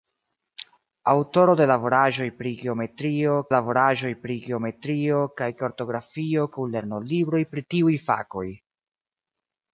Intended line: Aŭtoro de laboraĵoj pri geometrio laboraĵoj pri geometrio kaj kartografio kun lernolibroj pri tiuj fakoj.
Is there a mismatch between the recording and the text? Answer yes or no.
no